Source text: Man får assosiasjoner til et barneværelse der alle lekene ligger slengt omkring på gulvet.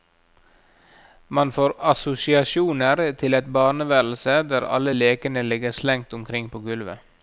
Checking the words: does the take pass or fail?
pass